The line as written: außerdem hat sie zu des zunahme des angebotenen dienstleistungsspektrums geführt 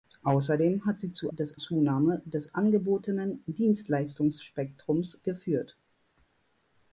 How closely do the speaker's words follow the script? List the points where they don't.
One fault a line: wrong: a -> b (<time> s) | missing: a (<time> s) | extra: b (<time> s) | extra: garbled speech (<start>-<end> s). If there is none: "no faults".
no faults